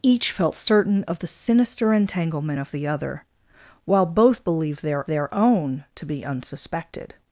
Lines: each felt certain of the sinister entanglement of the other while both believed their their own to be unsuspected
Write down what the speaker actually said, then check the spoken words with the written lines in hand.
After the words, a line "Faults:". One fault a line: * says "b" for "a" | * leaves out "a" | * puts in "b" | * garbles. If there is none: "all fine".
each felt certain of the sinister entanglement of the other while both believed their their own to be unsuspected
Faults:
all fine